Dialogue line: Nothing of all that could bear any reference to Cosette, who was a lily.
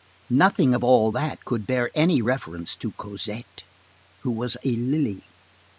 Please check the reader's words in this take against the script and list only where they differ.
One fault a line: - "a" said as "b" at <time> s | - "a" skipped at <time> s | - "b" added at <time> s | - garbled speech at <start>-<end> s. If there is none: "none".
none